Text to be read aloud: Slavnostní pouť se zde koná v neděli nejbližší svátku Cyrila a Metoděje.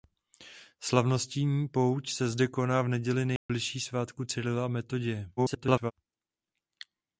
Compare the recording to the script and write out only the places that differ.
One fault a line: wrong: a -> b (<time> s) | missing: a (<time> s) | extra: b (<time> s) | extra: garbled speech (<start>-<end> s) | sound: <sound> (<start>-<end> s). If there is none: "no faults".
sound: dropout (3.4-3.5 s)
extra: garbled speech (5.4-5.9 s)